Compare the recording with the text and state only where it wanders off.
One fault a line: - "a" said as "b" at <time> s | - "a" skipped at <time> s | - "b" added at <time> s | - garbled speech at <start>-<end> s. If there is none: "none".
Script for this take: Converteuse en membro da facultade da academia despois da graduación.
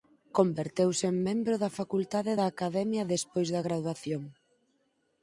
none